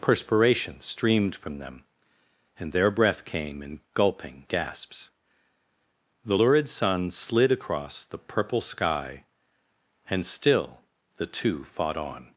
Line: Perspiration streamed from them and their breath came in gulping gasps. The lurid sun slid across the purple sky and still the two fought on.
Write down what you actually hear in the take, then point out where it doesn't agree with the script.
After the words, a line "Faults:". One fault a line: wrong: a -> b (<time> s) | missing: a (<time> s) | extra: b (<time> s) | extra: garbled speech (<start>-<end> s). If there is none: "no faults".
Perspiration streamed from them and their breath came in gulping gasps. The lurid sun slid across the purple sky and still the two fought on.
Faults:
no faults